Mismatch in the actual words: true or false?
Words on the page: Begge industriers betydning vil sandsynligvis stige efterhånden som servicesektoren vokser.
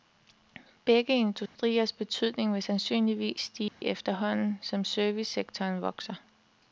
false